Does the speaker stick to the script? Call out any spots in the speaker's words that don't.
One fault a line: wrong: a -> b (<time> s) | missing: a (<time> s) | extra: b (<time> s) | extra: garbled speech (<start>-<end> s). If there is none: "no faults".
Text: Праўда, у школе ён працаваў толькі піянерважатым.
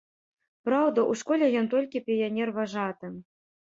missing: працаваў (1.7 s)